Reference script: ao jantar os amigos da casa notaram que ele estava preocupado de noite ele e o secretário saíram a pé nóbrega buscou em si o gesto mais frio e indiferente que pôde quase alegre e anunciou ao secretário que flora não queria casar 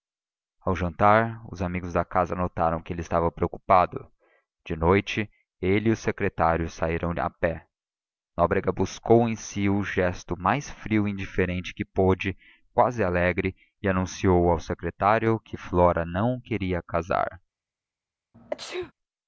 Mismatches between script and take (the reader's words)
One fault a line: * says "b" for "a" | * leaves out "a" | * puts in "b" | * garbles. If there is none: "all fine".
all fine